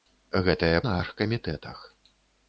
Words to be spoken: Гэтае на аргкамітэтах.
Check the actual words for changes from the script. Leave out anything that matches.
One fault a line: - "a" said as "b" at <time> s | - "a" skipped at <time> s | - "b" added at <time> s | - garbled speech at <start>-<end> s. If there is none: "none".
none